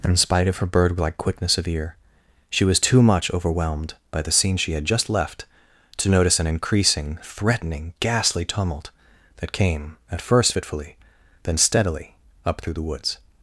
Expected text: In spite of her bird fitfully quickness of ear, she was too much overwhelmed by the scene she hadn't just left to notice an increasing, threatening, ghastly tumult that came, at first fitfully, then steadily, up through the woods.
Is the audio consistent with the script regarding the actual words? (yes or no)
no